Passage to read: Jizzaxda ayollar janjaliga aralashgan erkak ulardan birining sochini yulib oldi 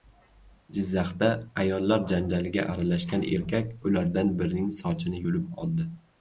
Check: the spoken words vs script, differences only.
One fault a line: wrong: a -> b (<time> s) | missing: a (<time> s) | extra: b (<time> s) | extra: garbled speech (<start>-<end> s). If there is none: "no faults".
no faults